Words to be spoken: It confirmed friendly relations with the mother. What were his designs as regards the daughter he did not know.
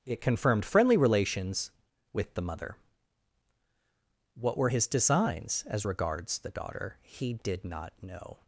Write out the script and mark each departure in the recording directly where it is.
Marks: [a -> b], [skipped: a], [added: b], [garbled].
It confirmed friendly relations with the mother. What were his designs as regards the daughter he did not know.